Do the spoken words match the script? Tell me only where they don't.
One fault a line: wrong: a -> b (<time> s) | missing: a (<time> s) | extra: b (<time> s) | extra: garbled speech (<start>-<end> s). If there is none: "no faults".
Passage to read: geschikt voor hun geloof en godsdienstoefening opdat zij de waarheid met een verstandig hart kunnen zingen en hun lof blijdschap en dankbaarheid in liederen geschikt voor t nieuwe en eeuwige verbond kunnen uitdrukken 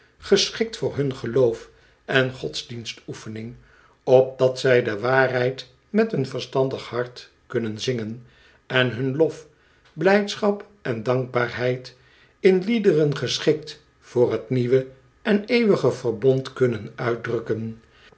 no faults